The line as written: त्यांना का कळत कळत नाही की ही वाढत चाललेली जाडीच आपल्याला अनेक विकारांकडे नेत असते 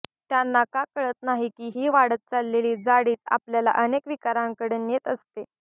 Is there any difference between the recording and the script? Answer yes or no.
yes